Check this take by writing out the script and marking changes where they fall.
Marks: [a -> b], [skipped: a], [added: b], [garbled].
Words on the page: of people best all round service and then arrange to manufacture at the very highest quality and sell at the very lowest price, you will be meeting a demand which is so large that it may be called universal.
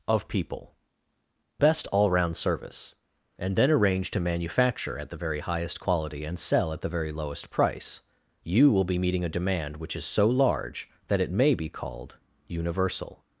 of people best all round service and then arrange to manufacture at the very highest quality and sell at the very lowest price, you will be meeting a demand which is so large that it may be called universal.